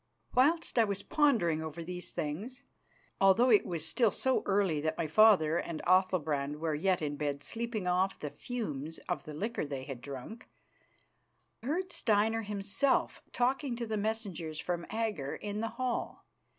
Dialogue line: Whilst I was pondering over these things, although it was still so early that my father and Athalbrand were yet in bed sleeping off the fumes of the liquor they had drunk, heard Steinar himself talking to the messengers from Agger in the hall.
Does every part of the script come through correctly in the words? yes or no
yes